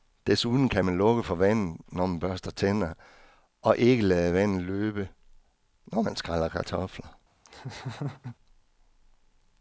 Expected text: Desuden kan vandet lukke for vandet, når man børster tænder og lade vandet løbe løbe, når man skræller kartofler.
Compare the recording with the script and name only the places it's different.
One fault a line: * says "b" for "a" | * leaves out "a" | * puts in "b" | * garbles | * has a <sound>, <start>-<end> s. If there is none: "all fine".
* says "man" for "vandet"
* puts in "ikke"
* leaves out "løbe"
* has a laugh, 7.4-8.4 s